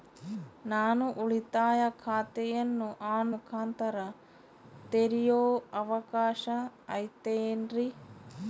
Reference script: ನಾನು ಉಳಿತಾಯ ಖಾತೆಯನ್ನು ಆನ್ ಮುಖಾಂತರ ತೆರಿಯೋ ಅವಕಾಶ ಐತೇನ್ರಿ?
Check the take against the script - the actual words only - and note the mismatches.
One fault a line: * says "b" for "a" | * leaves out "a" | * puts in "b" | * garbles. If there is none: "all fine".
all fine